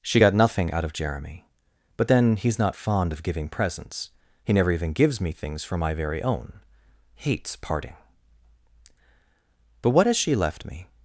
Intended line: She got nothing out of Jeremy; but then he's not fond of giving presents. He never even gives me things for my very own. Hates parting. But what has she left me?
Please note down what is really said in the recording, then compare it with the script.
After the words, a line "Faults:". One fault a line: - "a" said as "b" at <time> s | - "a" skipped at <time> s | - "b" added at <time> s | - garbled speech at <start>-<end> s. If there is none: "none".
She got nothing out of Jeremy; but then he's not fond of giving presents. He never even gives me things for my very own. Hates parting. But what has she left me?
Faults:
none